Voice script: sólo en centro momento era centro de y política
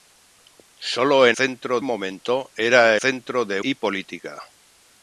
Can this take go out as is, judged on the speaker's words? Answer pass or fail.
pass